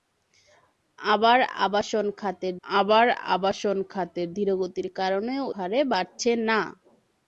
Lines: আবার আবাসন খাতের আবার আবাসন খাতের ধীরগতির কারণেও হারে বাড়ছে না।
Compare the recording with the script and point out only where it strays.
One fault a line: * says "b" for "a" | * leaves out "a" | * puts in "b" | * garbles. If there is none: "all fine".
all fine